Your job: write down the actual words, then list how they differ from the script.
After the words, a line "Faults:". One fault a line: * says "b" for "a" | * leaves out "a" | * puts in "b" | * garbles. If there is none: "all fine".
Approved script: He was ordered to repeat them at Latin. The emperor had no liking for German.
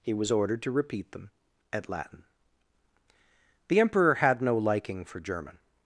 He was ordered to repeat them at Latin. The emperor had no liking for German.
Faults:
all fine